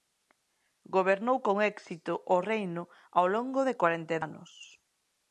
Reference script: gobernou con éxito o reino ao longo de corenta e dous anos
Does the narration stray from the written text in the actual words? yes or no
yes